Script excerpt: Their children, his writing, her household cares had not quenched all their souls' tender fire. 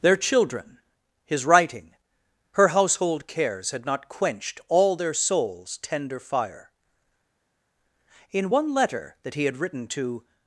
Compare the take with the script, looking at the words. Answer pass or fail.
fail